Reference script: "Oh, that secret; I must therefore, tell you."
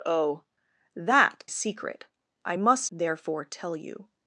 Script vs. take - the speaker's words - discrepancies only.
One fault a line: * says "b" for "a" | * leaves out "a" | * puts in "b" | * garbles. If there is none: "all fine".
all fine